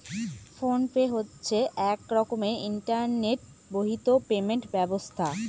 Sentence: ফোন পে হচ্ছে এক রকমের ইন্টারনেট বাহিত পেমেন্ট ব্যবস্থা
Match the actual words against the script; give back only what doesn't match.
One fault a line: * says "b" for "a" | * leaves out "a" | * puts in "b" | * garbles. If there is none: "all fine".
all fine